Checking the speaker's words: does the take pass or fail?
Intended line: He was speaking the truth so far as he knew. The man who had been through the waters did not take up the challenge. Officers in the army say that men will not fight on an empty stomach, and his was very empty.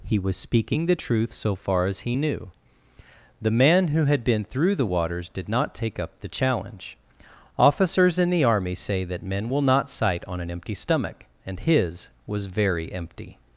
fail